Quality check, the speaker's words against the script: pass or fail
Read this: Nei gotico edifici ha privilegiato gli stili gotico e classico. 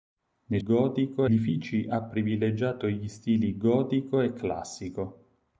pass